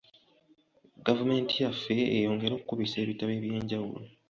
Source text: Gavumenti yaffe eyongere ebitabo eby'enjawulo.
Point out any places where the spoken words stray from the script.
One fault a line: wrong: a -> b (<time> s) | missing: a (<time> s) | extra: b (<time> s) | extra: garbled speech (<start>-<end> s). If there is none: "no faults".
extra: okukubisa (2.5 s)